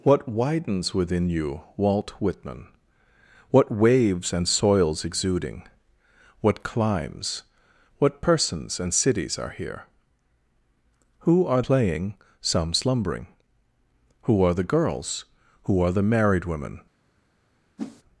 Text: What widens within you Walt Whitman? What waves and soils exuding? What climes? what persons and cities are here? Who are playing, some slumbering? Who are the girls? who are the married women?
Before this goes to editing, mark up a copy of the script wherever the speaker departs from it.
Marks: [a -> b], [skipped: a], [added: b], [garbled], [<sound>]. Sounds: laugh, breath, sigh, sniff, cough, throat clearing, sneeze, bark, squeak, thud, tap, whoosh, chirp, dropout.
What widens within you Walt Whitman? What waves and soils exuding? What climes? what persons and cities are here? Who are playing, some slumbering? Who are the girls? who are the married women? [whoosh]